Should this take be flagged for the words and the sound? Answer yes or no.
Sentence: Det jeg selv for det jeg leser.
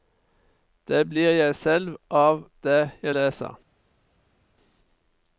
yes